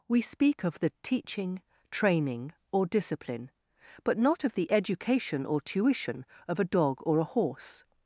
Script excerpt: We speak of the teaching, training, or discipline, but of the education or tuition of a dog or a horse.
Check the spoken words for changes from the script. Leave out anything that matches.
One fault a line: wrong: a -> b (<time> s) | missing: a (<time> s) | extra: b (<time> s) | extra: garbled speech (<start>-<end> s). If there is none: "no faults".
extra: not (4.2 s)